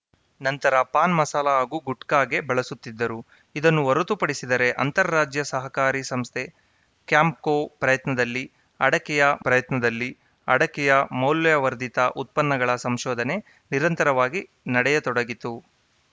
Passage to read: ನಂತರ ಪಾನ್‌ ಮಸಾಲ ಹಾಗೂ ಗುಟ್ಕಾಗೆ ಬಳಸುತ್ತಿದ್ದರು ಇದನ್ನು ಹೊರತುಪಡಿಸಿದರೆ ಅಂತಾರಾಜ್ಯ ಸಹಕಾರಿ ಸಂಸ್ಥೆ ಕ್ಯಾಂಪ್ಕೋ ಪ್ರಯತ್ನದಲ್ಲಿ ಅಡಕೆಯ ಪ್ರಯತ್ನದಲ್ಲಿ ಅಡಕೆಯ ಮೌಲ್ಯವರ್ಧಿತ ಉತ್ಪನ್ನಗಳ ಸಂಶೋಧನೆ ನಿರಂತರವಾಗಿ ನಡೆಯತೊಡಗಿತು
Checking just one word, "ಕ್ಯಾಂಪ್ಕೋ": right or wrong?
right